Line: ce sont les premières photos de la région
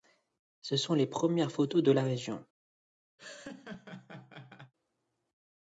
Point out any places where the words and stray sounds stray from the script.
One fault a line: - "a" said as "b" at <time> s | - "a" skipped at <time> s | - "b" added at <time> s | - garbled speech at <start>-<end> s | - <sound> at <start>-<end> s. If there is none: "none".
- laugh at 3.2-4.7 s